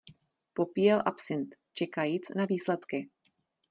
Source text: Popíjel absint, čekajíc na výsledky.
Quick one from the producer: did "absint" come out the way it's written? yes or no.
yes